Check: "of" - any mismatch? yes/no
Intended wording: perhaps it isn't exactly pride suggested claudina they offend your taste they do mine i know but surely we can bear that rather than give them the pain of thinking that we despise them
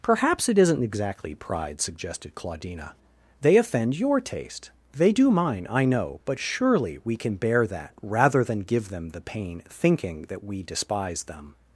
yes